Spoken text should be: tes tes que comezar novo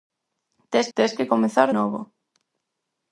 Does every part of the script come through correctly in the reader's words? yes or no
yes